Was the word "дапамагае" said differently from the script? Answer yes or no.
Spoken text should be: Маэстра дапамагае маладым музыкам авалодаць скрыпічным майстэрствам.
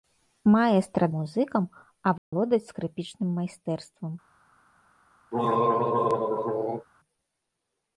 yes